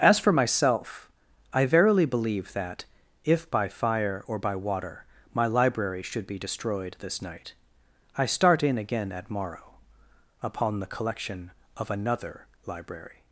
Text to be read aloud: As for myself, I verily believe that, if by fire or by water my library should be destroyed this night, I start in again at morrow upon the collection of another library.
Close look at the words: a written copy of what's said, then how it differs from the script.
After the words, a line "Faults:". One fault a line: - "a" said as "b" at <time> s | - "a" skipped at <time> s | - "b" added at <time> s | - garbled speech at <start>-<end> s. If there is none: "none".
As for myself, I verily believe that, if by fire or by water my library should be destroyed this night, I start in again at morrow upon the collection of another library.
Faults:
none